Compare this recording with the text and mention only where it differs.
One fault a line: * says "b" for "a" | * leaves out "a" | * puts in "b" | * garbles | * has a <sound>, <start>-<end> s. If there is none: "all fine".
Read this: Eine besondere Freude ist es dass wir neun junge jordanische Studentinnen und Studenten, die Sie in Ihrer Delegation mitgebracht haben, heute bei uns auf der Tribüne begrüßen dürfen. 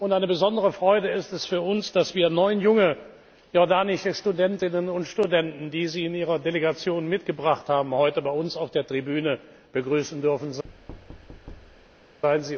* puts in "für uns"
* has a thud, 10.6-12.2 s